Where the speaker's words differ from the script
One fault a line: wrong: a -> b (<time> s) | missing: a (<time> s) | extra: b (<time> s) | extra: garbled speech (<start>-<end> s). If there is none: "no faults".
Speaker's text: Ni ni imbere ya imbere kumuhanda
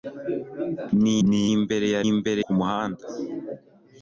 no faults